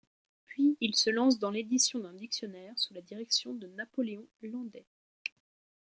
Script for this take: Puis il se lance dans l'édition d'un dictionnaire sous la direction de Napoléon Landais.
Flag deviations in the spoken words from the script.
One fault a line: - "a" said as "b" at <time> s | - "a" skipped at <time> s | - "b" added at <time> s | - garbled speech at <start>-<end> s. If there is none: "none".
none